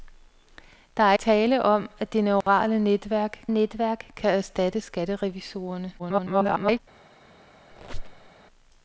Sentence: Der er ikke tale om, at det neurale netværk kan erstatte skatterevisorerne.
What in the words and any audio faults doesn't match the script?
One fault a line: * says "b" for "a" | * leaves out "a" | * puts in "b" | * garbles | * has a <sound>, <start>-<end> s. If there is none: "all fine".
* leaves out "ikke"
* has a dropout, 2.4-2.5 s
* puts in "netværk"
* garbles
* has a squeak, 7.7-8.3 s